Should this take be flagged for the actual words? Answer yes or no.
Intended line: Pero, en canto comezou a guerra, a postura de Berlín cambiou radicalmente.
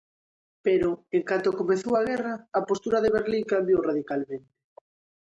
no